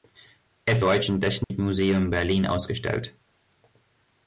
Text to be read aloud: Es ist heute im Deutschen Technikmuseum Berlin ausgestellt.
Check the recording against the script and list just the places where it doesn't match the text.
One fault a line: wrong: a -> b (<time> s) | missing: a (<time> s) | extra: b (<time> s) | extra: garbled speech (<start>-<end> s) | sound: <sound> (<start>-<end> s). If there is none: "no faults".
missing: ist heute im (0.8 s)
sound: dropout (1.4-1.5 s)